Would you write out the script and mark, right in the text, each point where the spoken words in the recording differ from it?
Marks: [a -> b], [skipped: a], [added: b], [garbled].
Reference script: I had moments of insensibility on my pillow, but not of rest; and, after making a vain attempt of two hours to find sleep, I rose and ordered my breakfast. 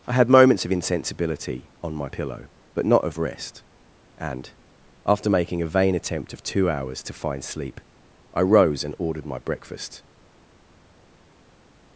I had moments of insensibility on my pillow, but not of rest; and, after making a vain attempt of two hours to find sleep, I rose and ordered my breakfast.